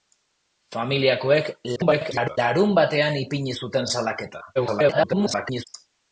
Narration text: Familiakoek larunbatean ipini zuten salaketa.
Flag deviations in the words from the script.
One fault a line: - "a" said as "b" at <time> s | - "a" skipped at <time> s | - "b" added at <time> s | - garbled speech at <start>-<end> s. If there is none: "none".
- garbled speech at 1.8-2.4 s
- garbled speech at 4.6-5.7 s